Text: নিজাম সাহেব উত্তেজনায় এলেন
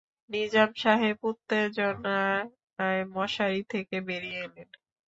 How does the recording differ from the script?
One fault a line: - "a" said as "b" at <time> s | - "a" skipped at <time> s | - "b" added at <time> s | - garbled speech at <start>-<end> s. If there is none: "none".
- "মশারি থেকে বেরিয়ে" added at 3.1 s